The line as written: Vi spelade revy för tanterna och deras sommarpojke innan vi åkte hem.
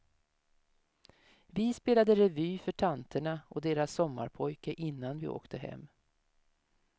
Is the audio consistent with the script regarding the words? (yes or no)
yes